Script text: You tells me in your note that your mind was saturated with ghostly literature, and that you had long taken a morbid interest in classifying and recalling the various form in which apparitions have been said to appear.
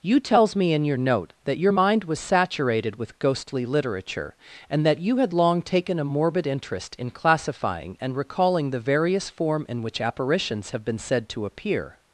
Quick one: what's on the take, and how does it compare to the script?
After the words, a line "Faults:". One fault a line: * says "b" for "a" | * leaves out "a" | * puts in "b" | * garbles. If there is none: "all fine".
You tells me in your note that your mind was saturated with ghostly literature, and that you had long taken a morbid interest in classifying and recalling the various form in which apparitions have been said to appear.
Faults:
all fine